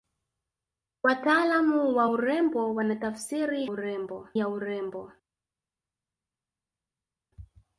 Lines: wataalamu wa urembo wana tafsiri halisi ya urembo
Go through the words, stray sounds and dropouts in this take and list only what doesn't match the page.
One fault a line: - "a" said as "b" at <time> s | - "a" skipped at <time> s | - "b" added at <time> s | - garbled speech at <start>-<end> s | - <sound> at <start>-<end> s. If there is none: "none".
- "halisi" said as "urembo" at 3.6 s